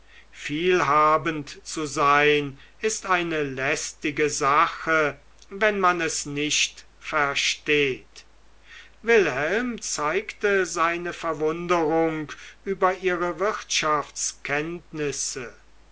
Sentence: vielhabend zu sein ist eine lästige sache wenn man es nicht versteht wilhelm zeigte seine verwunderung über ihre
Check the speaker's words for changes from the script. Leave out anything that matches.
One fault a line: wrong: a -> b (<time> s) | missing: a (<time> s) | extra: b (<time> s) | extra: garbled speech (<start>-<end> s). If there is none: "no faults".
no faults